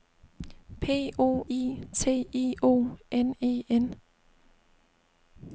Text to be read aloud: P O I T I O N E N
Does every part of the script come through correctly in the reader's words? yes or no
yes